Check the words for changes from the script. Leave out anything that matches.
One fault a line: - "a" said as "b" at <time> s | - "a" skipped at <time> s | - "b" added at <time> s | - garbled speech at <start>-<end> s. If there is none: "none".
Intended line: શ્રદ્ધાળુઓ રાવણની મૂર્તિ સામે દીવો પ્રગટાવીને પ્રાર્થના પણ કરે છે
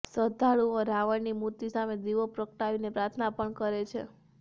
none